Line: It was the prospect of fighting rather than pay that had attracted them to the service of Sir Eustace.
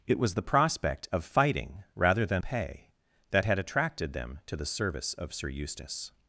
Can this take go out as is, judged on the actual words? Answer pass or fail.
pass